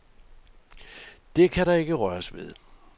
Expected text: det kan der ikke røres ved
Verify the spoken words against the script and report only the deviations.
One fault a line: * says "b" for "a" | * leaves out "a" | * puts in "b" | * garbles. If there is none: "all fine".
all fine